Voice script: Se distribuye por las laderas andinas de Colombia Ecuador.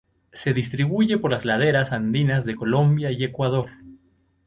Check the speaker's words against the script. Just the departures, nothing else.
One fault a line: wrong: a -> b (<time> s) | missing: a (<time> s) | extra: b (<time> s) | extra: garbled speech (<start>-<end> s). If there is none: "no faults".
extra: y (3.1 s)